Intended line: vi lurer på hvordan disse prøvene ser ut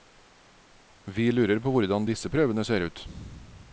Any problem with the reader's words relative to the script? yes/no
no